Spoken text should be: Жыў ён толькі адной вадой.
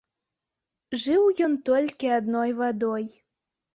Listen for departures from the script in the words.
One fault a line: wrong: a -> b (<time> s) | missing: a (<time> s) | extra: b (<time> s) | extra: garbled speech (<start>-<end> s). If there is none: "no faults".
no faults